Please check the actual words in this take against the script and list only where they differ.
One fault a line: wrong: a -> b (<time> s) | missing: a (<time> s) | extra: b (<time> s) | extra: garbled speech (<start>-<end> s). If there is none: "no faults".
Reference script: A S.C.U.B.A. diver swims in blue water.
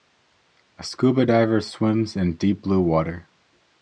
extra: deep (2.3 s)